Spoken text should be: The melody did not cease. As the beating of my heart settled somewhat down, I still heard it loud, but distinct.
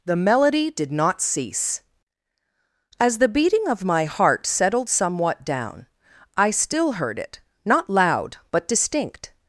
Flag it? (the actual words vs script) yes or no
yes